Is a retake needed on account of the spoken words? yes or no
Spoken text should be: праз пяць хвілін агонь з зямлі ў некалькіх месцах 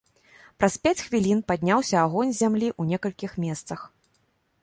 yes